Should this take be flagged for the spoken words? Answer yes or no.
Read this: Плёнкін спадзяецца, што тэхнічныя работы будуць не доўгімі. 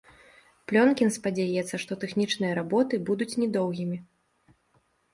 no